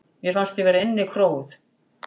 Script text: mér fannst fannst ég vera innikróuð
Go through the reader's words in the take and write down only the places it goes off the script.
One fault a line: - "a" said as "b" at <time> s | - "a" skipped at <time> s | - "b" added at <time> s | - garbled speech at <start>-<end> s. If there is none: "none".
- "fannst" skipped at 0.6 s